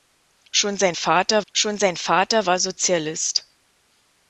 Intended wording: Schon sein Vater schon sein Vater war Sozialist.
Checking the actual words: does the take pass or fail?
pass